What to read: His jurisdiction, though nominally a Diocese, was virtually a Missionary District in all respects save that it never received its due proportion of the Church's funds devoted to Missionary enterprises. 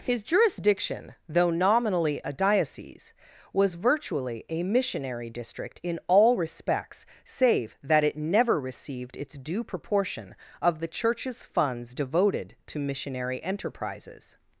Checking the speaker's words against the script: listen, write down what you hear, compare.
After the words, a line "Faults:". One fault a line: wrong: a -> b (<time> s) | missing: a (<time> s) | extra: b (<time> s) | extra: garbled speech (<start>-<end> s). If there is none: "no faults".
His jurisdiction, though nominally a Diocese, was virtually a Missionary District in all respects save that it never received its due proportion of the Church's funds devoted to Missionary enterprises.
Faults:
no faults